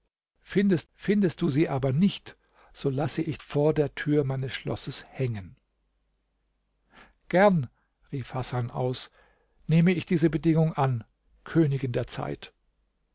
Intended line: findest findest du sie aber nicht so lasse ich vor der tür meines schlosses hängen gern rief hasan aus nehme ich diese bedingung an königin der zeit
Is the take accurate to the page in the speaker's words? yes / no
yes